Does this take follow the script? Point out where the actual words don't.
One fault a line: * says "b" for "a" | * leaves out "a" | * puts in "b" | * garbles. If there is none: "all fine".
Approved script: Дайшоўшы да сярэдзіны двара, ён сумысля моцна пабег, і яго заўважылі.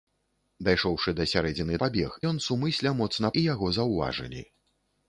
* says "пабег" for "двара"
* leaves out "пабег"